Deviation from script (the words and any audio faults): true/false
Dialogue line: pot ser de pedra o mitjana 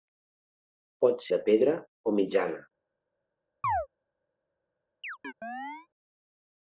true